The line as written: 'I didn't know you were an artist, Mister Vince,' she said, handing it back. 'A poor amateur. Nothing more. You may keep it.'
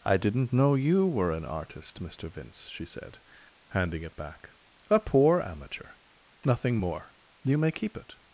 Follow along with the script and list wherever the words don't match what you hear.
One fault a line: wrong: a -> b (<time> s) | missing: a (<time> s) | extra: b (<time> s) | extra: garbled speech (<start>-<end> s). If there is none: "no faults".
no faults